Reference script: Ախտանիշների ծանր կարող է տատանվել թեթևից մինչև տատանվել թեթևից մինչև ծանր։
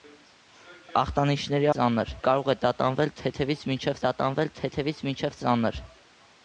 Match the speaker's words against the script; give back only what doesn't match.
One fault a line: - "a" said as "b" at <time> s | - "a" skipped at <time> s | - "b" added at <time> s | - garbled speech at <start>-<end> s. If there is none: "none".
none